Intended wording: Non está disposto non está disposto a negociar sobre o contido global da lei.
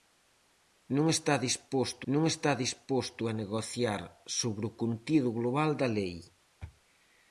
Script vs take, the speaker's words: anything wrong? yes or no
no